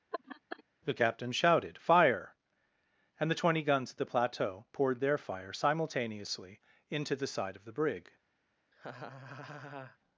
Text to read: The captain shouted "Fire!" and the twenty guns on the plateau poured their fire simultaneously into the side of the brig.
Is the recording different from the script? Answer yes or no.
yes